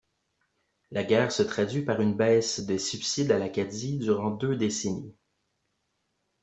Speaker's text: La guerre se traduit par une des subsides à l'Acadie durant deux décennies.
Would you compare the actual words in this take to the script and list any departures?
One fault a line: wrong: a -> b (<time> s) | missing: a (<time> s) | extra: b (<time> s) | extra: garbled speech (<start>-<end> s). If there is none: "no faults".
extra: baisse (2.1 s)